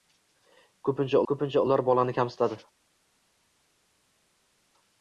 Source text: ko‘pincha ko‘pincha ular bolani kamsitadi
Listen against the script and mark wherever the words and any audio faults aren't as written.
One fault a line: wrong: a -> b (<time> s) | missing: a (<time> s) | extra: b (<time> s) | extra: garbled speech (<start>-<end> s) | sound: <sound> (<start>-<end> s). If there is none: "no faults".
no faults